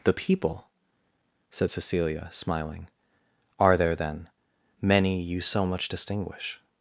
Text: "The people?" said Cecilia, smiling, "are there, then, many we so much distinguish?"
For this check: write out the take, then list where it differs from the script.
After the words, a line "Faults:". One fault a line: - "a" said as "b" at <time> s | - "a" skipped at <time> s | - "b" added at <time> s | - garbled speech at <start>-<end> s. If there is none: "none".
"The people?" said Cecilia, smiling, "are there, then, many you so much distinguish?"
Faults:
- "we" said as "you" at 5.2 s